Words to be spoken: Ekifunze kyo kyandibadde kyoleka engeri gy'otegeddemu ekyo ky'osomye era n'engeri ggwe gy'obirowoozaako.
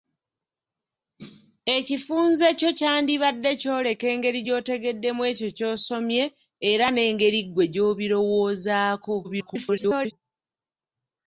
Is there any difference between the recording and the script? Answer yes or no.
yes